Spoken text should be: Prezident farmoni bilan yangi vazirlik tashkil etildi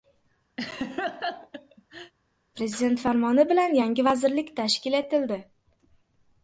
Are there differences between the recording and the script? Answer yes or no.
no